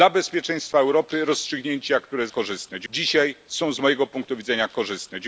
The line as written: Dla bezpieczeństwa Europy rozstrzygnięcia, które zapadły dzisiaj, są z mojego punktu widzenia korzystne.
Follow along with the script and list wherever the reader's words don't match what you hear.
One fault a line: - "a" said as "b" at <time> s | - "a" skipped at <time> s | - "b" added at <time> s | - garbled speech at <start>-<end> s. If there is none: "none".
- "zapadły" said as "korzystne" at 2.3 s